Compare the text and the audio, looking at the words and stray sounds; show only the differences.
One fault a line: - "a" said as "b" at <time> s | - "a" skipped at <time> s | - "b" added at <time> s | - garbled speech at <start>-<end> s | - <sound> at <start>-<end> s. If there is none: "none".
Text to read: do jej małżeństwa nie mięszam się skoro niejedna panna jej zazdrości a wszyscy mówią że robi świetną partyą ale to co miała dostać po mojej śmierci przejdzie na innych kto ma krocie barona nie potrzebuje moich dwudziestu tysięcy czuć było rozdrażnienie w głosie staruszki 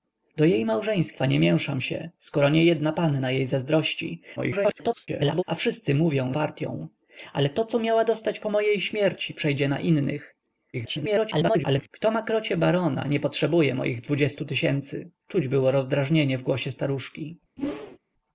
- garbled speech at 4.4-5.4 s
- "że robi świetną" skipped at 6.3 s
- garbled speech at 10.7-11.9 s
- whoosh at 17.6-18.0 s